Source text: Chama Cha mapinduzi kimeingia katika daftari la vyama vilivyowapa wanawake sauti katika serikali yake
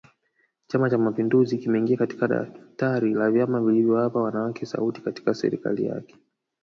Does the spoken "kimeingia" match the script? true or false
true